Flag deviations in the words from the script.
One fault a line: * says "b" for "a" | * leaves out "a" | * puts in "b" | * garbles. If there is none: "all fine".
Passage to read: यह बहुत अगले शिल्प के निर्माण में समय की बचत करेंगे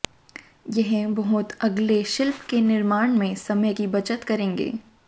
all fine